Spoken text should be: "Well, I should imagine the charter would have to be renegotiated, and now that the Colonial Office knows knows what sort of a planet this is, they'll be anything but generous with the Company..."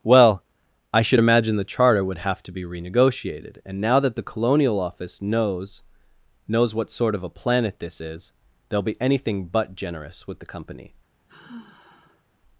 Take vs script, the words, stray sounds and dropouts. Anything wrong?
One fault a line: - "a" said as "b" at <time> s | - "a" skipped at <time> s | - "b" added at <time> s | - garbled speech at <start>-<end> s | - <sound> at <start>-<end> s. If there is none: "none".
- sigh at 11.3-12.2 s